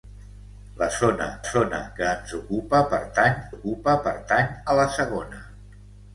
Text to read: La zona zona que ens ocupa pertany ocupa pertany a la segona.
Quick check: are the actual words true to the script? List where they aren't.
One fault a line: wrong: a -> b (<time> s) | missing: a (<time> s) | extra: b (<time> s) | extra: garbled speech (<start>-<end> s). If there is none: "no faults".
no faults